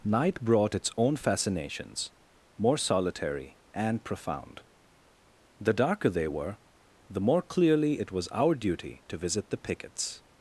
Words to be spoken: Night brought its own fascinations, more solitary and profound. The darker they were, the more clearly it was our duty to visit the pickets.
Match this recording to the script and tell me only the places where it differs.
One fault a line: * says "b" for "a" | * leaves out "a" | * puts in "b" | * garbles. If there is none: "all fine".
all fine